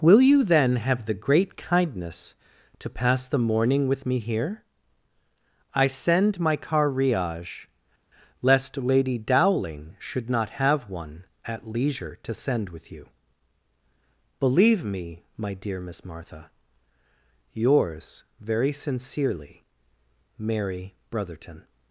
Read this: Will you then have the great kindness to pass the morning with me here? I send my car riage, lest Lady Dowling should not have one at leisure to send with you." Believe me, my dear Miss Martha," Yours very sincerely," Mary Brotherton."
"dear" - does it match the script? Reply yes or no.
yes